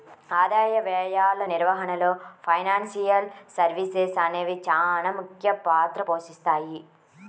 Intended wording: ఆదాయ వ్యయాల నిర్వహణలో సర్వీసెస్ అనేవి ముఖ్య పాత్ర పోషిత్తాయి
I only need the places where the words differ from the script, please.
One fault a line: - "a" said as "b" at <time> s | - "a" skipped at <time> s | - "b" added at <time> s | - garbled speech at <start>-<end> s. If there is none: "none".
- "ఫైనాన్షియల్" added at 2.5 s
- "చానా" added at 4.7 s